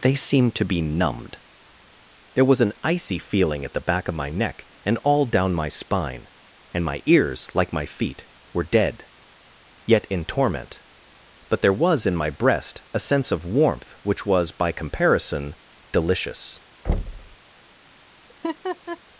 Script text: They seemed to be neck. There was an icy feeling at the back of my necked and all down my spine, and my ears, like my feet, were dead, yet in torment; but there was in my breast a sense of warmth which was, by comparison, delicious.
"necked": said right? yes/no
no